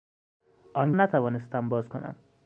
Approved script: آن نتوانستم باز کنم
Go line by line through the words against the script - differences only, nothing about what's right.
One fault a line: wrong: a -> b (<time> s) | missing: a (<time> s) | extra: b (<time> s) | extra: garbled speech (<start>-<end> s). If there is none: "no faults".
no faults